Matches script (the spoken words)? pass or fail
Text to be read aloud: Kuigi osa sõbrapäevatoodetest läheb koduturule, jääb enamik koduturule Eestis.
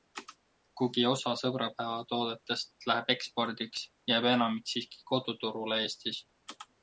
fail